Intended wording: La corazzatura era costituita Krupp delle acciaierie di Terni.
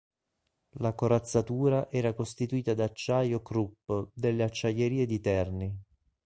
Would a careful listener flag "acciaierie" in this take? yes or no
no